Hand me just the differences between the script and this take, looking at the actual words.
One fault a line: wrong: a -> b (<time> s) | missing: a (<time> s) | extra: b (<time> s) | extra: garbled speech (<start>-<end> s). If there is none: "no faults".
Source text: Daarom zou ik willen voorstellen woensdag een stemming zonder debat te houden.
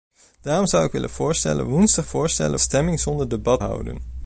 wrong: een -> voorstellen (2.0 s)
missing: te (3.6 s)